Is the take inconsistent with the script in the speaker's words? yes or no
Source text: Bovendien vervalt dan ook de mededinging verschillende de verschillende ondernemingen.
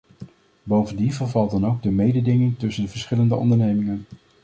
yes